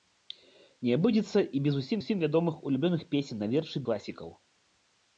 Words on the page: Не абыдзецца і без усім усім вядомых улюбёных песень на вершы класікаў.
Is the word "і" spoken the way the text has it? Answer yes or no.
yes